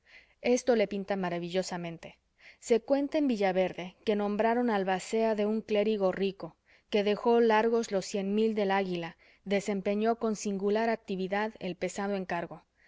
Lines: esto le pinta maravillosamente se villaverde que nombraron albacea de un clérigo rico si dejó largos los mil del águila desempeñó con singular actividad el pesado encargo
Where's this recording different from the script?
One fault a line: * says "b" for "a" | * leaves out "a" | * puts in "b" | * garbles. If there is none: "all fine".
* puts in "cuenta en"
* says "que" for "si"
* puts in "cien"